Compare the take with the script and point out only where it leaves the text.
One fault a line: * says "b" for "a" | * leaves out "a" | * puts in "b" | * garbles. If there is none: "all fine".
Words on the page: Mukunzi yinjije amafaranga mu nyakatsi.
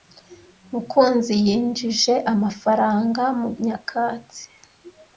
all fine